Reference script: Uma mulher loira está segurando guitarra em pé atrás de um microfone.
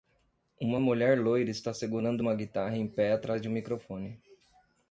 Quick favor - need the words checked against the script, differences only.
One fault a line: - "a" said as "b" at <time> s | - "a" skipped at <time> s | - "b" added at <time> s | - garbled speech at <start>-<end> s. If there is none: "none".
- "uma" added at 2.2 s